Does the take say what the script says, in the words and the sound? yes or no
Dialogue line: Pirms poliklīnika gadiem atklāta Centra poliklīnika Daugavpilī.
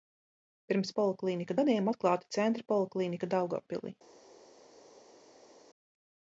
yes